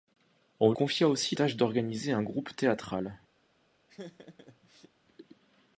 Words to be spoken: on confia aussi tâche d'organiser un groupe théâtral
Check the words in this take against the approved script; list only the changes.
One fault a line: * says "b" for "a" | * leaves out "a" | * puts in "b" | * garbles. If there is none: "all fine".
all fine